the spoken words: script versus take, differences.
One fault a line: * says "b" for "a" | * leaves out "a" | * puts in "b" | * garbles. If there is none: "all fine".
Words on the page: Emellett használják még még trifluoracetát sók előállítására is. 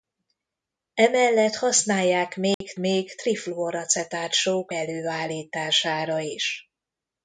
all fine